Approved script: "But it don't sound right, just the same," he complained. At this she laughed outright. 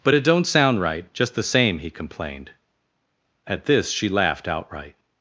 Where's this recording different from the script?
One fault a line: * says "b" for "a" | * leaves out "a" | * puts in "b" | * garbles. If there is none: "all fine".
all fine